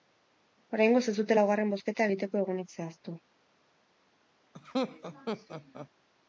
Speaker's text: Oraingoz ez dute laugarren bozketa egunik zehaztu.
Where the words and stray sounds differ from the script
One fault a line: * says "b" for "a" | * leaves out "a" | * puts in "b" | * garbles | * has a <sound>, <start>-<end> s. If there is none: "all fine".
* puts in "egiteko"
* has a laugh, 4.5-5.9 s